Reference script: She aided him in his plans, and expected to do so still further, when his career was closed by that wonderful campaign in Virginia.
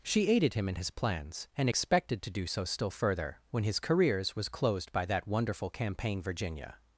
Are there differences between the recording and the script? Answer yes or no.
yes